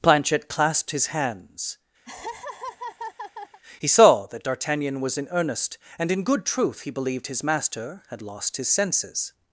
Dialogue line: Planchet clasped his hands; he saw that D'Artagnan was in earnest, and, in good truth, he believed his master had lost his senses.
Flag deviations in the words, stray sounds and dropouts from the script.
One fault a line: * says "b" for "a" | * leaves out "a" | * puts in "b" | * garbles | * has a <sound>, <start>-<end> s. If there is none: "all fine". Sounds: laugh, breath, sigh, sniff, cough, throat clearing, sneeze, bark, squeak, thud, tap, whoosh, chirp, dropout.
* has a laugh, 2.0-3.6 s